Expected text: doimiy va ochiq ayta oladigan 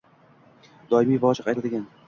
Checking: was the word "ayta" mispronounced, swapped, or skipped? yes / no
yes